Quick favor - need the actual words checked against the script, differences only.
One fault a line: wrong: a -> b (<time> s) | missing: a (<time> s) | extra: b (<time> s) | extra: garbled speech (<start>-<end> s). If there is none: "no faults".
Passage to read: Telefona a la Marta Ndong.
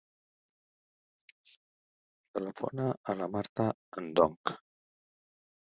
no faults